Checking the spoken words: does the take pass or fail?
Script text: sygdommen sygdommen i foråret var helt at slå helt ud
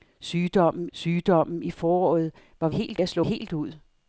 pass